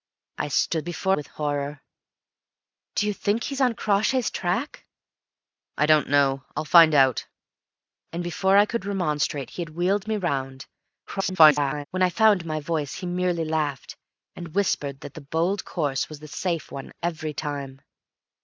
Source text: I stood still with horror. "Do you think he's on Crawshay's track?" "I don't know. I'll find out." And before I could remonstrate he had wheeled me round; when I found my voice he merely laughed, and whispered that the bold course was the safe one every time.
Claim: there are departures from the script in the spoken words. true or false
true